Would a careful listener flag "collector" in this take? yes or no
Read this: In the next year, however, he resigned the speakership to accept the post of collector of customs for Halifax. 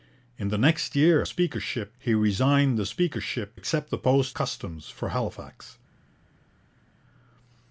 yes